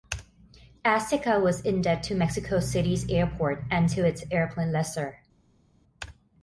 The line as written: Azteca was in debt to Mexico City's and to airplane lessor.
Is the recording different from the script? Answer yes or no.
yes